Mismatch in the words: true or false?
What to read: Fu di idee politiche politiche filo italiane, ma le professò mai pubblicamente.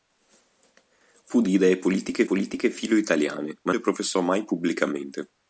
false